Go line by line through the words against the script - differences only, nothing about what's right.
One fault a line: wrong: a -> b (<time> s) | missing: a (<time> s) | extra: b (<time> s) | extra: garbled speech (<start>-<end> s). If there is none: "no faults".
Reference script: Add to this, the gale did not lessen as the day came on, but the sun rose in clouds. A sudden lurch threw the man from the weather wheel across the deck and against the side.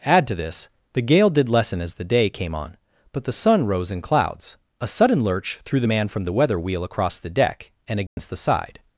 missing: not (1.5 s)